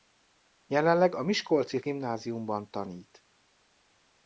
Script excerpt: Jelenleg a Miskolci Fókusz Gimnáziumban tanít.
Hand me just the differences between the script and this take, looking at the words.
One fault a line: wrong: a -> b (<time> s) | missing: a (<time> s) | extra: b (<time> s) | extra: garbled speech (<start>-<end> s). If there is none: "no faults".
missing: Fókusz (1.8 s)